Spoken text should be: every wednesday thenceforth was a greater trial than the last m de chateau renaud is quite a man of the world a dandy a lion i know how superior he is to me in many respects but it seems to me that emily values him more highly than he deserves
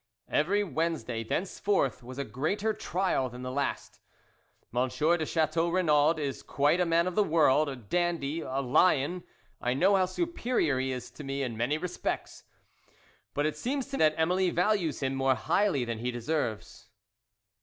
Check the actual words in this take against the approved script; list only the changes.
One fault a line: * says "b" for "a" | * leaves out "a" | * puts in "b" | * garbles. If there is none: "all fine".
* leaves out "me"